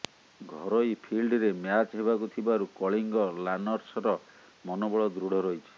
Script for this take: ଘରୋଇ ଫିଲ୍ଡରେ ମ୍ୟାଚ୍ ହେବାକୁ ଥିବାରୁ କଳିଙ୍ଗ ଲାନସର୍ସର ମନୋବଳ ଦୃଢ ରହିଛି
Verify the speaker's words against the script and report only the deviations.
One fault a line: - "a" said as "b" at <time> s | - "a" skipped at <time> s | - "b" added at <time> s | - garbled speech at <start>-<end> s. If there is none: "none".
none